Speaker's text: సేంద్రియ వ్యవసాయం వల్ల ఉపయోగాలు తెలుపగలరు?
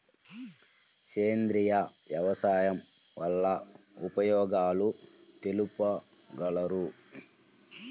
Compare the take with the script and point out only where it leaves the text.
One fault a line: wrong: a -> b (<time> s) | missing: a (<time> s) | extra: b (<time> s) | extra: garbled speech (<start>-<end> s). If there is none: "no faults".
no faults